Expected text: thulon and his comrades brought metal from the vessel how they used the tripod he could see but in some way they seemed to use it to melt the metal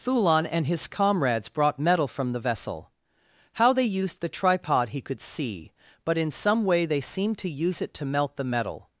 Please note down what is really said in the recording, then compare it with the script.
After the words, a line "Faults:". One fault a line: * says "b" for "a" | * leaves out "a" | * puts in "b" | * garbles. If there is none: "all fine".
thulon and his comrades brought metal from the vessel how they used the tripod he could see but in some way they seemed to use it to melt the metal
Faults:
all fine